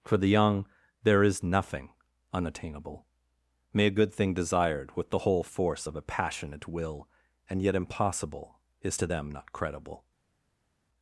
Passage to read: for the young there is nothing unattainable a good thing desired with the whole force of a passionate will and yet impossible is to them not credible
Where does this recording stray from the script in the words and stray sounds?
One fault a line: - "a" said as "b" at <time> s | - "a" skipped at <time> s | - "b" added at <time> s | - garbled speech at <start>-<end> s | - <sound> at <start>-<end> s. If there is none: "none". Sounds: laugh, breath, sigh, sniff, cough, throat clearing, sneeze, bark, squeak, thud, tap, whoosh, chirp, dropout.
- "may" added at 3.7 s